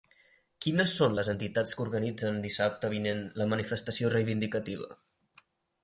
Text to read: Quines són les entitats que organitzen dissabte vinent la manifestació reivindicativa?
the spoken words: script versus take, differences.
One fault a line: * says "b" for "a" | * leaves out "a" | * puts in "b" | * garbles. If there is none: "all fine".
all fine